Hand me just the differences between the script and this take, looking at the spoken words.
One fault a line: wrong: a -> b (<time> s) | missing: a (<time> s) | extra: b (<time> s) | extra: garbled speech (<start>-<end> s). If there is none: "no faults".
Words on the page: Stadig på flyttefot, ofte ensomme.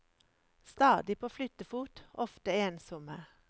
no faults